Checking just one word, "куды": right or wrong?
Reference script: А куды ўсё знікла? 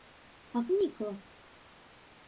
wrong